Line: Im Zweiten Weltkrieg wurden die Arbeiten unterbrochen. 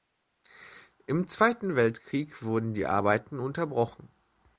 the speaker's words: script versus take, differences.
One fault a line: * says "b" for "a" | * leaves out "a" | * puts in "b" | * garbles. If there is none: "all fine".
all fine